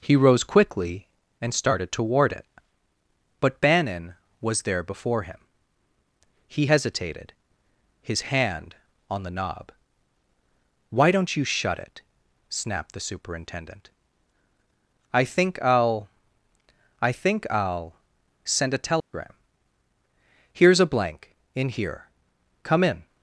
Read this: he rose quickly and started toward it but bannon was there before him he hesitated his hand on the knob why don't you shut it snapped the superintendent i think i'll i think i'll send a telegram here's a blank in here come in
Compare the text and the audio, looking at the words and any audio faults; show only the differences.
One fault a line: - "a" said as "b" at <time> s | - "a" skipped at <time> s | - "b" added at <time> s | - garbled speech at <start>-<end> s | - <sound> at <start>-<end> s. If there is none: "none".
- dropout at 19.0-19.1 s